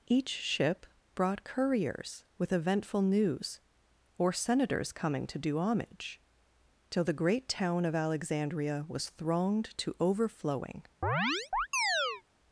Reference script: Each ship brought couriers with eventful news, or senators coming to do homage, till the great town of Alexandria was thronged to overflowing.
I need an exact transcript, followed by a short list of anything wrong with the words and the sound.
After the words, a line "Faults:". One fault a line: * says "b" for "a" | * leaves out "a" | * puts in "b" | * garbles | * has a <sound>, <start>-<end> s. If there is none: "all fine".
Each ship brought couriers with eventful news, or senators coming to do homage, till the great town of Alexandria was thronged to overflowing.
Faults:
* has a chirp, 11.0-12.2 s